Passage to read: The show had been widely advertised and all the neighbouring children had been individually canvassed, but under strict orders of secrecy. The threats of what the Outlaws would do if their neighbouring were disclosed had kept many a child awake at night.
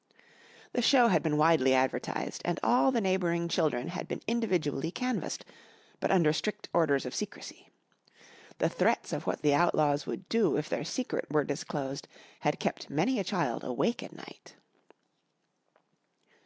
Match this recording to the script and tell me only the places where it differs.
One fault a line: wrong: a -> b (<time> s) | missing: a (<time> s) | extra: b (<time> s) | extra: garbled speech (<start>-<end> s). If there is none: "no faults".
wrong: neighbouring -> secret (10.8 s)